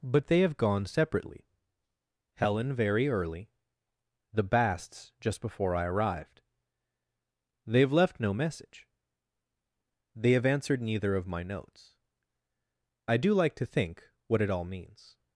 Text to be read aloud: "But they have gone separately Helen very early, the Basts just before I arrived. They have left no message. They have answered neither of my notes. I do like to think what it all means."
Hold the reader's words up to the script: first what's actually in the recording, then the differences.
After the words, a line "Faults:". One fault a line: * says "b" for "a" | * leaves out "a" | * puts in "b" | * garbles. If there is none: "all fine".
"But they have gone separately Helen very early, the Basts just before I arrived. They have left no message. They have answered neither of my notes. I do like to think what it all means."
Faults:
all fine